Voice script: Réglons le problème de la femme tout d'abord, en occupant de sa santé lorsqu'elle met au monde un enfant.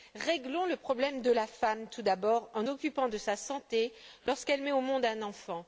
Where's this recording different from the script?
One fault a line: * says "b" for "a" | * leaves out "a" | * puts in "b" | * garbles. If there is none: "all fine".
all fine